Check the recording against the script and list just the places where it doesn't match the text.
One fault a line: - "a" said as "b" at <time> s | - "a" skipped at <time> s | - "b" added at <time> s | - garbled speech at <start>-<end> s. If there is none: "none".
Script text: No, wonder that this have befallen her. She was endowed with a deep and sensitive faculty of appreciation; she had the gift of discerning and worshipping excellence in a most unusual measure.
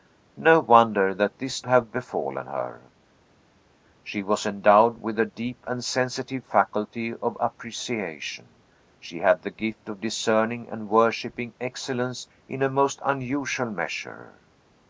none